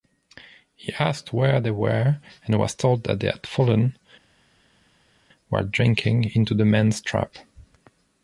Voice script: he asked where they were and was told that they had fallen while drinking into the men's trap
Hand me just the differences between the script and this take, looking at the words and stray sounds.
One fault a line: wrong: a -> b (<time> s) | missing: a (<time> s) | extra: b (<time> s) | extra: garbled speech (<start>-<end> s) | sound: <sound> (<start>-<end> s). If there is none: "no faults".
no faults